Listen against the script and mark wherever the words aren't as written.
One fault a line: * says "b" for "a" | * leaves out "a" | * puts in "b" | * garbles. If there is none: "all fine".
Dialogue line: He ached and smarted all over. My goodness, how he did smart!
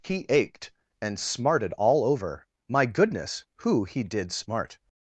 * says "who" for "how"